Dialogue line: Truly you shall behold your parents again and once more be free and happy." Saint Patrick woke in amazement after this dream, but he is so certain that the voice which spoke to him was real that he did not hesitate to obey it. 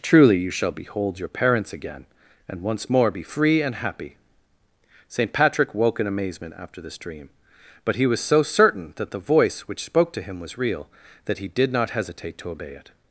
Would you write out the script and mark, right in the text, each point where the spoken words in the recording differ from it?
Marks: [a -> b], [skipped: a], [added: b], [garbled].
Truly you shall behold your parents again and once more be free and happy." Saint Patrick woke in amazement after this dream, but he [is -> was] so certain that the voice which spoke to him was real that he did not hesitate to obey it.